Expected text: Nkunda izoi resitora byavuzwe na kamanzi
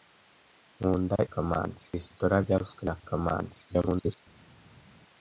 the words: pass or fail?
fail